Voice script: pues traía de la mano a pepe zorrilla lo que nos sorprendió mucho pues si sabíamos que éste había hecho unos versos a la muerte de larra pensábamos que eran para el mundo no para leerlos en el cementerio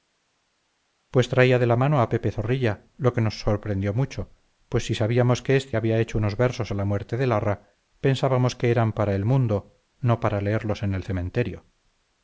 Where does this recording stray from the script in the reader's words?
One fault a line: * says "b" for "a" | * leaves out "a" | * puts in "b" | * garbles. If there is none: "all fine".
all fine